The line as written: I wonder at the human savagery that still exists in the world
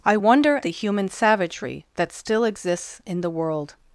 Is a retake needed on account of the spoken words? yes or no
yes